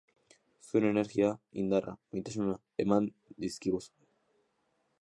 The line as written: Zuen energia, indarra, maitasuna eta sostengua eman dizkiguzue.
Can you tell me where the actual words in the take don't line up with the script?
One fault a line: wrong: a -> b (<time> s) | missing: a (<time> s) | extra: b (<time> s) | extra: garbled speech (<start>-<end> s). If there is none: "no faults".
missing: eta sostengua (2.6 s)